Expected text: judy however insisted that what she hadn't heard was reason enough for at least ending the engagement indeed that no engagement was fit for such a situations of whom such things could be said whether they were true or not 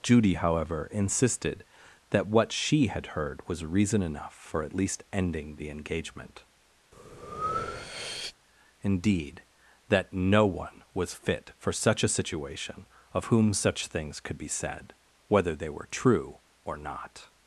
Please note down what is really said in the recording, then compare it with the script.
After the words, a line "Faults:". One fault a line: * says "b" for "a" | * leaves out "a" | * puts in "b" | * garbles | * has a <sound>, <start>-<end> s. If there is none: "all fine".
judy however insisted that what she had heard was reason enough for at least ending the engagement indeed that no one was fit for such a situation of whom such things could be said whether they were true or not
Faults:
* says "had" for "hadn't"
* has a breath, 6.9-8.3 s
* says "one" for "engagement"
* says "situation" for "situations"